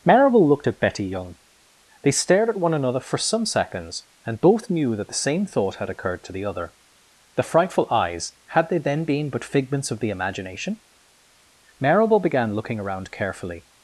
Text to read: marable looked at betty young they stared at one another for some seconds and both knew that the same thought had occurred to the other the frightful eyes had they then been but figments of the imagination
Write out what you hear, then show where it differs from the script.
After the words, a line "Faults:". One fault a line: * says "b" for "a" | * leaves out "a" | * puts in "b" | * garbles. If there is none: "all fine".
marable looked at betty young they stared at one another for some seconds and both knew that the same thought had occurred to the other the frightful eyes had they then been but figments of the imagination marable began looking around carefully
Faults:
* puts in "marable began looking around carefully"